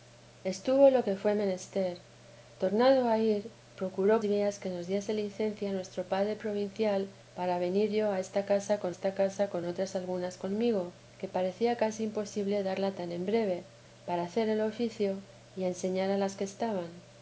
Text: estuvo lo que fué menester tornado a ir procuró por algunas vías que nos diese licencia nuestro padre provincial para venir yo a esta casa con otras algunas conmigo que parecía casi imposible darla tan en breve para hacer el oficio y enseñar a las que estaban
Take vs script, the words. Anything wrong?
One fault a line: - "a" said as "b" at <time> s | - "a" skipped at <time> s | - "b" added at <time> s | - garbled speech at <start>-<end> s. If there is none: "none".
- "por algunas" skipped at 4.2 s
- "esta casa con" added at 8.9 s